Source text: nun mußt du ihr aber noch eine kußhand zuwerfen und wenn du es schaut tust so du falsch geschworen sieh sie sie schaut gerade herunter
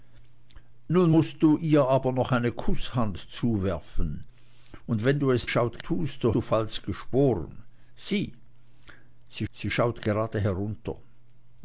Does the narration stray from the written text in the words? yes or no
no